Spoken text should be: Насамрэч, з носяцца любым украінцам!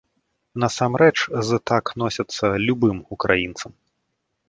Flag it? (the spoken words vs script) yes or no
yes